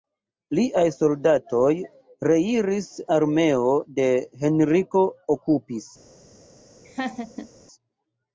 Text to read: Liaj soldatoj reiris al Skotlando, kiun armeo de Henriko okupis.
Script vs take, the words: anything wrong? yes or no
yes